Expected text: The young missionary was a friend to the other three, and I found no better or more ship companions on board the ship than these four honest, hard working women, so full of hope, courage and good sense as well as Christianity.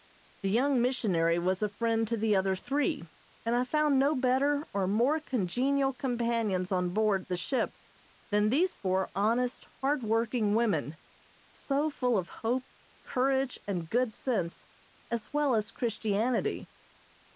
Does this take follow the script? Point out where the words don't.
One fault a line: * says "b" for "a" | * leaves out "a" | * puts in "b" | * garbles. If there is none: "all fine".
* says "congenial" for "ship"